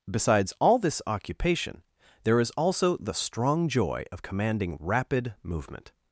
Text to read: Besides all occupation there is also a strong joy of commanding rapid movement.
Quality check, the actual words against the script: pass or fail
fail